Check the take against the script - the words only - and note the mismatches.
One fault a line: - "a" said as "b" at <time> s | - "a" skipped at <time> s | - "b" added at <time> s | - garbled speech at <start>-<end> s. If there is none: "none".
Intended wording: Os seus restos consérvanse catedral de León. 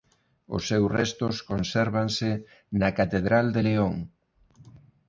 - "na" added at 2.8 s